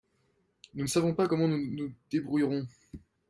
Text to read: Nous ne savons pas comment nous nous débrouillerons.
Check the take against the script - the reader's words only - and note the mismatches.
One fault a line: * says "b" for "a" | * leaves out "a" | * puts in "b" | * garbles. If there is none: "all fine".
all fine